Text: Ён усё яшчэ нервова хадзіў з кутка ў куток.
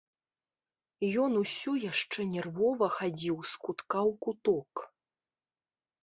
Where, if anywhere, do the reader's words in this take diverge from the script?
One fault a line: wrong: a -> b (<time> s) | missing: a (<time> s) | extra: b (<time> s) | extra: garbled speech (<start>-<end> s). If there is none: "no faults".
no faults